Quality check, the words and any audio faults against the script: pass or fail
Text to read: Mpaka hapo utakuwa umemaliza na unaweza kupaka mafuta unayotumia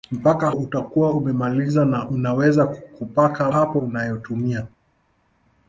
fail